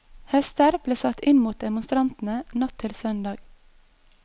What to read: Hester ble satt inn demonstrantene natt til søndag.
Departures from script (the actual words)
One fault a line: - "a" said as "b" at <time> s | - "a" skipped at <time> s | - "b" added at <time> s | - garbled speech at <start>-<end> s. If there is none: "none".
- "mot" added at 1.4 s